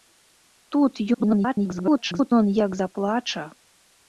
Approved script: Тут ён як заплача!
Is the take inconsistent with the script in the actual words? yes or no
yes